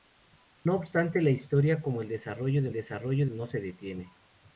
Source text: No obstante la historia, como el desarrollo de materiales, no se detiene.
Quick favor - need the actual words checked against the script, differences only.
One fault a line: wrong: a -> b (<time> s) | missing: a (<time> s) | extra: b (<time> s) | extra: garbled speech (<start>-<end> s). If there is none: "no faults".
wrong: materiales -> desarrollo (2.7 s)